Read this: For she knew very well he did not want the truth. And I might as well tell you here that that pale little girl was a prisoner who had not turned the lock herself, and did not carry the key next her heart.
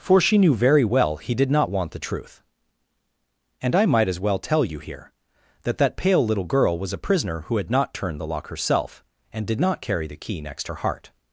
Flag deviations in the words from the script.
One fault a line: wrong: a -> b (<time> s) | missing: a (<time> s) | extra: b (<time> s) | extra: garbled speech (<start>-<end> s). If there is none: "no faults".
no faults